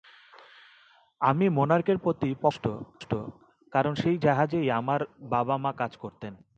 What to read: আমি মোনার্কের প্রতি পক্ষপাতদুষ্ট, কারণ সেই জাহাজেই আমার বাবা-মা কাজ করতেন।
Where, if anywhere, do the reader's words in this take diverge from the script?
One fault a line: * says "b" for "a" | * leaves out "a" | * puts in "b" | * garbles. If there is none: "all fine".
all fine